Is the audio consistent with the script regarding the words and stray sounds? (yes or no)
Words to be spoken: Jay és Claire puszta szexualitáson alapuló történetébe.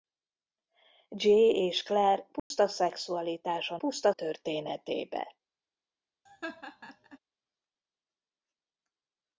no